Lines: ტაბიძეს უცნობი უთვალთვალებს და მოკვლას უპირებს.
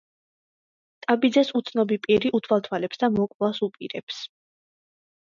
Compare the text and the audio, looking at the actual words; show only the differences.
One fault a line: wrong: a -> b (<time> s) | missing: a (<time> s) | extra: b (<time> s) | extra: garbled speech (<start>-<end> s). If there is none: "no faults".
extra: პირი (2.1 s)